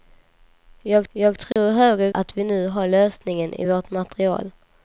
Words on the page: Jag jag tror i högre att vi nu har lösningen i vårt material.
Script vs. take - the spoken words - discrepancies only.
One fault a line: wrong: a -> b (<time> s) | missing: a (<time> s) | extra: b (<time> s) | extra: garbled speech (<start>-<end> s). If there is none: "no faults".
no faults